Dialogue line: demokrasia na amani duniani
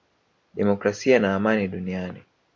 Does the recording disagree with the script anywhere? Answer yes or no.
no